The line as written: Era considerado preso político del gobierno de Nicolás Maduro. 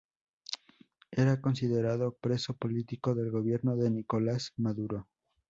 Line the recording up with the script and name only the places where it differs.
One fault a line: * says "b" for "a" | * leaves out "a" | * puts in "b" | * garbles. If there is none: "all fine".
all fine